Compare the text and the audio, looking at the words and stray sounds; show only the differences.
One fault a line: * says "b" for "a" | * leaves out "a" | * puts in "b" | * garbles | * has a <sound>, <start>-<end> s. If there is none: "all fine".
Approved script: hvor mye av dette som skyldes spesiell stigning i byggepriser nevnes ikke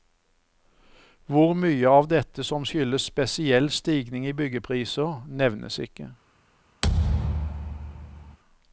* has a thud, 6.8-8.4 s